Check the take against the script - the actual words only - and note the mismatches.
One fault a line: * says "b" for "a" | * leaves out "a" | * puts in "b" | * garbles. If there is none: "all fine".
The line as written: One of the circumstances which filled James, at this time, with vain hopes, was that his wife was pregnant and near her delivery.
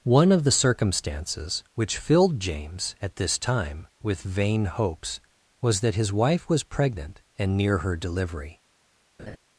all fine